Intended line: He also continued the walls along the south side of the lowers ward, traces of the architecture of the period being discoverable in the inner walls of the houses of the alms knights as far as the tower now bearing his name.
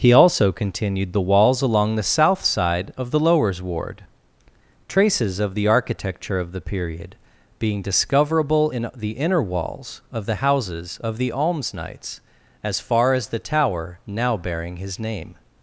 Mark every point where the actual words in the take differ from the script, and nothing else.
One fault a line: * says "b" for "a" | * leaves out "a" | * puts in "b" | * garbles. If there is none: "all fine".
all fine